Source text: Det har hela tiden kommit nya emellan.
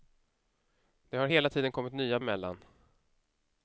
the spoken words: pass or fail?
pass